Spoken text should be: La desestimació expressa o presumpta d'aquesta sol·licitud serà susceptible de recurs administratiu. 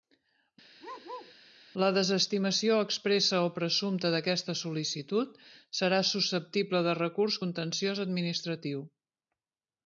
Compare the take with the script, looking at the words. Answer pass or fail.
fail